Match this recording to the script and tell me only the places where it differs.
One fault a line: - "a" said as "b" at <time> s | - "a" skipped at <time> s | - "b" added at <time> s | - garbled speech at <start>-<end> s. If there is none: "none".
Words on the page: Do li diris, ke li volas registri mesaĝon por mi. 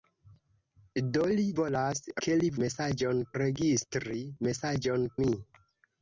- "diris" said as "volas" at 1.6 s
- "volas" said as "mesaĝon" at 2.7 s
- "por" skipped at 5.1 s